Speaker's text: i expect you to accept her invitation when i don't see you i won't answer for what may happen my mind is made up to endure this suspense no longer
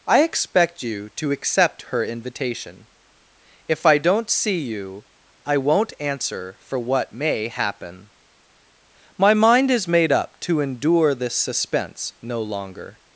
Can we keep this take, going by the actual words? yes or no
no